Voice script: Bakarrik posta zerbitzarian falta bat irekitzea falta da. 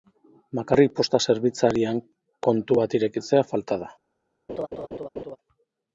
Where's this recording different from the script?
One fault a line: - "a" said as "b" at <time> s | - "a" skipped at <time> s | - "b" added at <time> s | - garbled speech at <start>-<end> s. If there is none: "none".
- "falta" said as "kontu" at 2.5 s